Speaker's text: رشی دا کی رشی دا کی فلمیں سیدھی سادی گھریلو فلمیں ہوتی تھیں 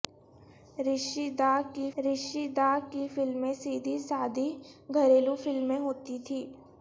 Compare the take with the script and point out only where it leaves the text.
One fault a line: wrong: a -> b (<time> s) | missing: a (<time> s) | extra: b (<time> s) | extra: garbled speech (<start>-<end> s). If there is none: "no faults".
no faults